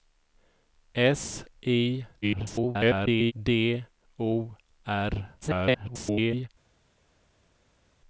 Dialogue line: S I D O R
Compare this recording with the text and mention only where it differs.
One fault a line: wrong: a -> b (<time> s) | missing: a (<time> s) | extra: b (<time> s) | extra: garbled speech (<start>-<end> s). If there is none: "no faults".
extra: garbled speech (2.2-3.3 s)
extra: garbled speech (5.4-6.5 s)